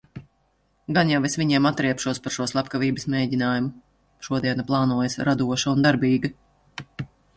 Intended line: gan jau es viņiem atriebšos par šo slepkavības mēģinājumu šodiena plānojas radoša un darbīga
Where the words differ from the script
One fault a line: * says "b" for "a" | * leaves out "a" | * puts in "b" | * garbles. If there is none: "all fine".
all fine